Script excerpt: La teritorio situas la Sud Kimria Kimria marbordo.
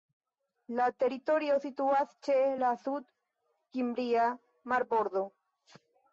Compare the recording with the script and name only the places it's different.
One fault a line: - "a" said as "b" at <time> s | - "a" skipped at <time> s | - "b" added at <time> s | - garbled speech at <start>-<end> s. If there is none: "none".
- "ĉe" added at 2.3 s
- "Kimria" skipped at 4.3 s